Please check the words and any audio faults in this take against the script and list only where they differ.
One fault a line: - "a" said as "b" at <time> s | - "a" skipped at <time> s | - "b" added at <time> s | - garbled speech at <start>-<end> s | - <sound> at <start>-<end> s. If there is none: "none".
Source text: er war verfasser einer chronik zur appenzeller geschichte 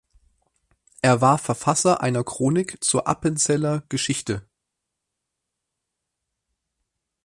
none